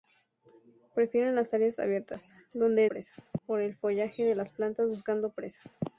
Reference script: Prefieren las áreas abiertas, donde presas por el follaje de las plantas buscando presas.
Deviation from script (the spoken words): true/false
false